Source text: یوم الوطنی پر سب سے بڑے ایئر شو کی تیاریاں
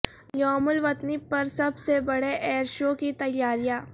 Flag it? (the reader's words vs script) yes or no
no